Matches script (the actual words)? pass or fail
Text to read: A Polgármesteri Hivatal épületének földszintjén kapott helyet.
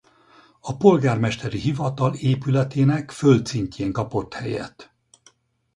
pass